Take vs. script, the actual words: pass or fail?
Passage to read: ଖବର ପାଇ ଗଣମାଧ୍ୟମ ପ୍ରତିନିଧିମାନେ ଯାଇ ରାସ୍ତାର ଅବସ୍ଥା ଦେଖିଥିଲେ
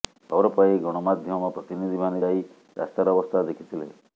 pass